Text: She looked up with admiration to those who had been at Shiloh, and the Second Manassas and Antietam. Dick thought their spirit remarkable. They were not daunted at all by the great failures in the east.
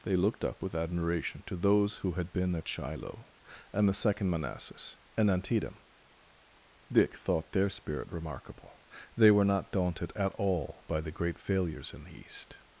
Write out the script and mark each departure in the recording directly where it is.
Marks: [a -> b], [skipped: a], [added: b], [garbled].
[She -> They] looked up with admiration to those who had been at Shiloh, and the Second Manassas and Antietam. Dick thought their spirit remarkable. They were not daunted at all by the great failures in the east.